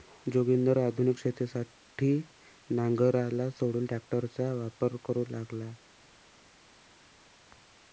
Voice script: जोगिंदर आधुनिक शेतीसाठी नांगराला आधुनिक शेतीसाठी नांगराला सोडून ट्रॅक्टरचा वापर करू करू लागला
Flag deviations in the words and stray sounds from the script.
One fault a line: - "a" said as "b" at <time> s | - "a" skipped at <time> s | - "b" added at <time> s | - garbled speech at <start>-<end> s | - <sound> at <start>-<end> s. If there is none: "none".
- "आधुनिक शेतीसाठी नांगराला" skipped at 3.5 s
- "करू" skipped at 5.2 s